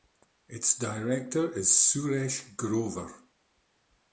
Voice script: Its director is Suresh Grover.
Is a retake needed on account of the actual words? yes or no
no